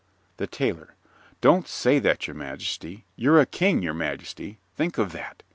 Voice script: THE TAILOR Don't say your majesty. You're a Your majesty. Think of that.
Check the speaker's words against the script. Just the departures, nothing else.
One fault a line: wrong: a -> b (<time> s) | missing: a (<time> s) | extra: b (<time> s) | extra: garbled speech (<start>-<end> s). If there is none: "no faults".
extra: that (2.0 s)
extra: King (3.5 s)